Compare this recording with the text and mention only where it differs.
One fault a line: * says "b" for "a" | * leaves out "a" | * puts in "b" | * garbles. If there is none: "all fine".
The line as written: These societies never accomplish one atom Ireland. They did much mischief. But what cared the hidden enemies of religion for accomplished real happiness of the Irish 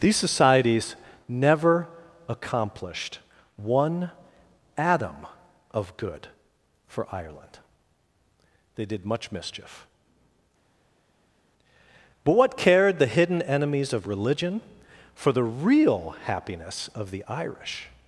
* says "accomplished" for "accomplish"
* puts in "of good for"
* says "the" for "accomplished"